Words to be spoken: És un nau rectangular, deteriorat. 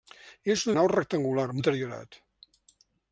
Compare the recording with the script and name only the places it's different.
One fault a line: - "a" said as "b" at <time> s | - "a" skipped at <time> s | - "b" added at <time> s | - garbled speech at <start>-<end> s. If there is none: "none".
none